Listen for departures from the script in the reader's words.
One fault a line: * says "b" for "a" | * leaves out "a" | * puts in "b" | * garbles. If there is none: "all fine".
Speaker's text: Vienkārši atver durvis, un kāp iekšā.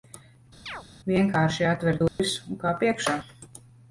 all fine